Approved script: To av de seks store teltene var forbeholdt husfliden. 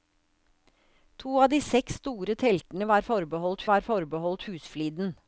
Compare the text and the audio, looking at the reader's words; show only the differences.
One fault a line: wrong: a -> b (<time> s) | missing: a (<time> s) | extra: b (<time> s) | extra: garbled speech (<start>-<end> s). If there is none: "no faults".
extra: var forbeholdt (3.7 s)